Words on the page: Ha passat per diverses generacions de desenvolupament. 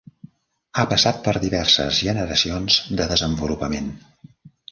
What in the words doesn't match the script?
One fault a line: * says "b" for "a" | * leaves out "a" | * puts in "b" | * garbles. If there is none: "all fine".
all fine